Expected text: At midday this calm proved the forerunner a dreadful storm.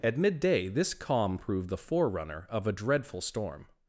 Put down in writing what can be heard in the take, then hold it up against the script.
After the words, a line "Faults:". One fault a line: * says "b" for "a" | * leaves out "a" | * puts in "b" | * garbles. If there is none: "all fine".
At midday this calm proved the forerunner of a dreadful storm.
Faults:
* puts in "of"